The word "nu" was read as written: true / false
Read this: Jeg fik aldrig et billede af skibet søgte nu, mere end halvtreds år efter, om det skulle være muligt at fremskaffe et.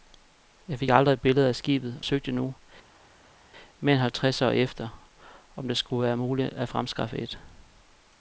true